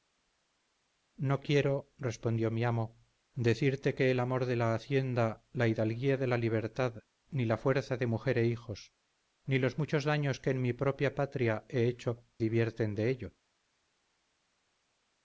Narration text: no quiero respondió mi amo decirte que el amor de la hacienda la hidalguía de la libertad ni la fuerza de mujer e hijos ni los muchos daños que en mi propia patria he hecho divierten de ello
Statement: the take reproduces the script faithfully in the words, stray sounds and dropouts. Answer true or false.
true